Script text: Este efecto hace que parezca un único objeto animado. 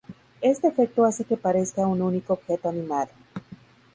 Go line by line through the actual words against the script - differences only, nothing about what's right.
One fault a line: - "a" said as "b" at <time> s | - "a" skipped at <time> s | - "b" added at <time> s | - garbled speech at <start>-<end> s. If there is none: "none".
none